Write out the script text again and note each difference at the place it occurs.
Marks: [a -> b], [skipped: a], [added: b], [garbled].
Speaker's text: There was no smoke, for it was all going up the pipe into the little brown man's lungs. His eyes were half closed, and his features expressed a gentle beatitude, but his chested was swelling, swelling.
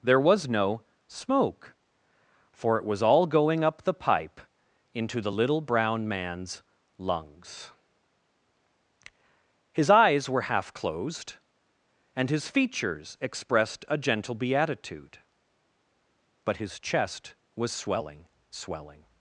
There was no smoke, for it was all going up the pipe into the little brown man's lungs. His eyes were half closed, and his features expressed a gentle beatitude, but his [chested -> chest] was swelling, swelling.